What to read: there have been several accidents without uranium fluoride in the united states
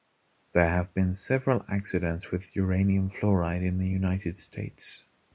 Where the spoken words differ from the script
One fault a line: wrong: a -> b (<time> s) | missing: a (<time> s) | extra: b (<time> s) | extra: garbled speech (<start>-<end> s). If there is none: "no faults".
wrong: without -> with (2.3 s)